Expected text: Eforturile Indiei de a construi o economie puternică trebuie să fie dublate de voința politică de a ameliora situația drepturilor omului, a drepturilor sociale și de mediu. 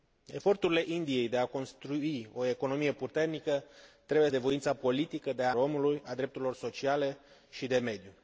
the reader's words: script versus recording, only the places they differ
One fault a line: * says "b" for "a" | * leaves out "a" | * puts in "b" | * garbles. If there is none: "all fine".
* leaves out "să fie dublate"
* leaves out "ameliora situația drepturilor"